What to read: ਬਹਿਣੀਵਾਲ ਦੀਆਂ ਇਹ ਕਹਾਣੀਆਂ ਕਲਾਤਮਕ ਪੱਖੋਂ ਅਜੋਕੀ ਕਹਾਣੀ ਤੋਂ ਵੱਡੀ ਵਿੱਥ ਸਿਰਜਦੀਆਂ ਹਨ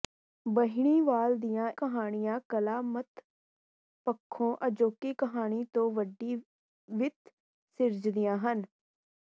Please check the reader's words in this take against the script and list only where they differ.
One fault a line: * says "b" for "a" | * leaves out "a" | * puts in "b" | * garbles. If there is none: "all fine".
* leaves out "ਇਹ"